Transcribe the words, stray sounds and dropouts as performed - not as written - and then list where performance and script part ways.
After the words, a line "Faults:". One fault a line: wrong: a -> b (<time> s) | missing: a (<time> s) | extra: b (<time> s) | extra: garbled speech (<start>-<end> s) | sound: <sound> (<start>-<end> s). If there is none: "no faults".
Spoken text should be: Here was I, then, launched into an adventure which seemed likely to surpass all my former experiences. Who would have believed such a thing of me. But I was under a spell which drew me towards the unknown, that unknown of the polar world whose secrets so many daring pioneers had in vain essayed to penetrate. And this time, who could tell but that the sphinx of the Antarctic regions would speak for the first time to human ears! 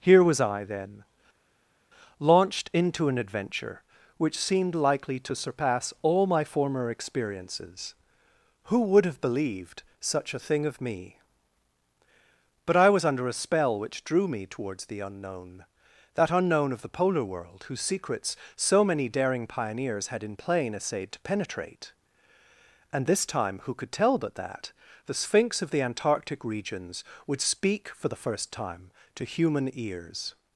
Here was I, then, launched into an adventure which seemed likely to surpass all my former experiences. Who would have believed such a thing of me. But I was under a spell which drew me towards the unknown, that unknown of the polar world whose secrets so many daring pioneers had in plain essayed to penetrate. And this time, who could tell but that the sphinx of the Antarctic regions would speak for the first time to human ears!
Faults:
wrong: vain -> plain (20.4 s)